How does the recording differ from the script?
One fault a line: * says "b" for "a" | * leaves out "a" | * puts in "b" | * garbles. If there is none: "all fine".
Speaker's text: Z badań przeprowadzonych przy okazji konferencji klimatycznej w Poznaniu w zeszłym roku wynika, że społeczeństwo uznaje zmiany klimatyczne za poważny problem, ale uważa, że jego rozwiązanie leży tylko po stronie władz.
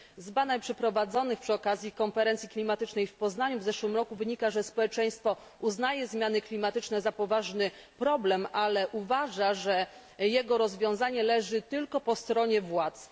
all fine